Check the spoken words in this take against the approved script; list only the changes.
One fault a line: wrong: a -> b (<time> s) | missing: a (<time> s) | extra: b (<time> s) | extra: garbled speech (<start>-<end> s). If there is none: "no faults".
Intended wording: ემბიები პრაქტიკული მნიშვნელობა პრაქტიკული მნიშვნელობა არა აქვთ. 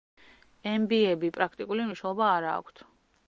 missing: პრაქტიკული მნიშვნელობა (2.3 s)